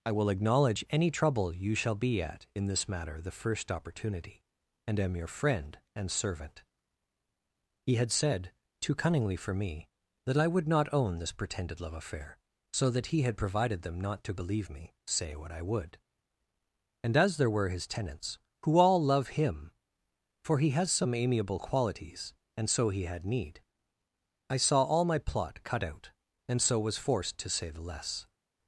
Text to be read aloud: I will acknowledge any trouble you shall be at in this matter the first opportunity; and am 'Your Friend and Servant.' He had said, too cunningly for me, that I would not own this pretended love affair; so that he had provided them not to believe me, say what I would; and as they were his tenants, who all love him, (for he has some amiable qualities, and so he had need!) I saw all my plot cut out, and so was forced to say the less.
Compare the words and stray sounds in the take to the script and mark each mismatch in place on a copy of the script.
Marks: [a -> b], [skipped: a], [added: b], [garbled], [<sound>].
I will acknowledge any trouble you shall be at in this matter the first opportunity; and am 'Your Friend and Servant.' He had said, too cunningly for me, that I would not own this pretended love affair; so that he had provided them not to believe me, say what I would; and as [they -> there] were his tenants, who all love him, (for he has some amiable qualities, and so he had need!) I saw all my plot cut out, and so was forced to say the less.